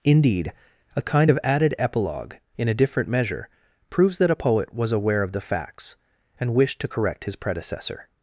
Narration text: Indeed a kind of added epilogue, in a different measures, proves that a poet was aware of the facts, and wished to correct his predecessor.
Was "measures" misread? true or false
true